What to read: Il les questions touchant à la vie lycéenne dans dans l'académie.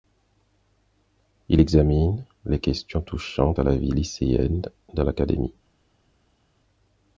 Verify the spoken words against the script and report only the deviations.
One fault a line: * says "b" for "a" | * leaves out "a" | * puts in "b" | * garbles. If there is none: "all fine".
* puts in "examine"
* leaves out "dans"